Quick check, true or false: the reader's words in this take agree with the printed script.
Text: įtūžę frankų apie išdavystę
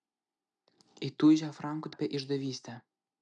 true